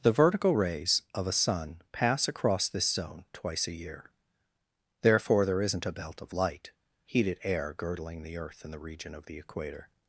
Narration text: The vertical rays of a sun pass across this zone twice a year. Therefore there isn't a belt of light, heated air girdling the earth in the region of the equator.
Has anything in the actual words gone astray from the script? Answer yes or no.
no